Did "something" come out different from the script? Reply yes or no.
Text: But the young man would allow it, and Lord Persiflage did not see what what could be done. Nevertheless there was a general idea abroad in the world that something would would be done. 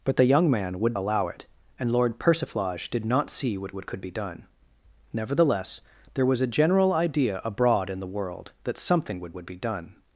no